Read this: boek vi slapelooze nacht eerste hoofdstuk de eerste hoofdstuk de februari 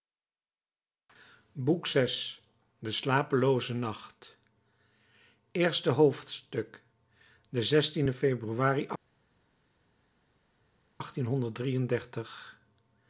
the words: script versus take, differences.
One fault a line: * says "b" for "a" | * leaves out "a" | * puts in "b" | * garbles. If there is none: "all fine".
* puts in "de"
* leaves out "eerste hoofdstuk de"